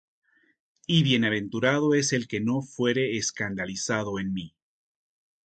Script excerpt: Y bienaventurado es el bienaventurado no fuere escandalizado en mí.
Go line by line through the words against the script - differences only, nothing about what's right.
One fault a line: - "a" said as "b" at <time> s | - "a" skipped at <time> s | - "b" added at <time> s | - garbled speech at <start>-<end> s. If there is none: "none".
- "bienaventurado" said as "que" at 2.3 s